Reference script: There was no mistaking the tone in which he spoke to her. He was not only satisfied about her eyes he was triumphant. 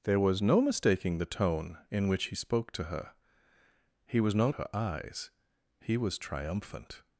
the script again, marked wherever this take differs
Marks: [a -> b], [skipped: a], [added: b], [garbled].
There was no mistaking the tone in which he spoke to her. He was not [skipped: only satisfied about] her eyes he was triumphant.